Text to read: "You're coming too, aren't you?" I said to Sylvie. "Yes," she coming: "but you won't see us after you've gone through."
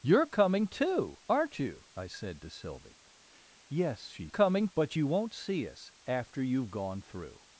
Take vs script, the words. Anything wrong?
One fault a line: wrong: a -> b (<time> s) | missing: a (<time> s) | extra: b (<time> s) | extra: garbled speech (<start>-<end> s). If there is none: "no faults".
no faults